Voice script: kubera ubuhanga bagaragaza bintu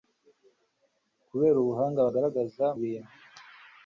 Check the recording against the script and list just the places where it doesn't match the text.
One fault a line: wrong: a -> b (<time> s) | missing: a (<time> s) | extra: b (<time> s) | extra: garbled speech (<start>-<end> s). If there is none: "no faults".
no faults